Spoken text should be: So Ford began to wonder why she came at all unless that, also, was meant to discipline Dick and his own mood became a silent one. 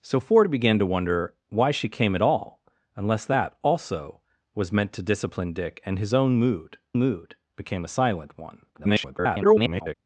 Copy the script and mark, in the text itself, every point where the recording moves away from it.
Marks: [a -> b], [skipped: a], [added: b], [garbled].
So Ford began to wonder why she came at all unless that, also, was meant to discipline Dick and his own mood [added: mood] became a silent one. [garbled]